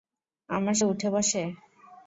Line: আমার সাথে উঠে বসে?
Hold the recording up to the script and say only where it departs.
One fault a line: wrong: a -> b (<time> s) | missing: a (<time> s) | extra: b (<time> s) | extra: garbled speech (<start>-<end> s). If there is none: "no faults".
missing: সাথে (0.8 s)